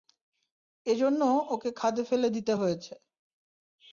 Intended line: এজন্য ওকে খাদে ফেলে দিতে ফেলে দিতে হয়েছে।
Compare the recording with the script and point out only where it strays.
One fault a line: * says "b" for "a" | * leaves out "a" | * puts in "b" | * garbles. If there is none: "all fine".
* leaves out "ফেলে দিতে"